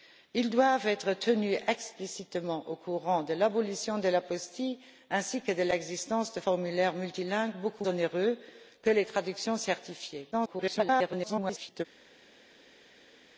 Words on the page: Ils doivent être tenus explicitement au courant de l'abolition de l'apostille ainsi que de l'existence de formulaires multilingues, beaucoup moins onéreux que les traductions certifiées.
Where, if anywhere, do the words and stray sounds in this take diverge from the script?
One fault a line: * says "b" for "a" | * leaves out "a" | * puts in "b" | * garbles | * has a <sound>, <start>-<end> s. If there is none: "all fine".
* leaves out "moins"
* garbles